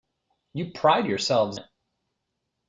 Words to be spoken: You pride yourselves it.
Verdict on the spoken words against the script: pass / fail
pass